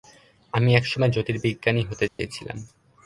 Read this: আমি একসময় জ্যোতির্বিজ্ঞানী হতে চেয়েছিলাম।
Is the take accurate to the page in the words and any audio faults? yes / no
no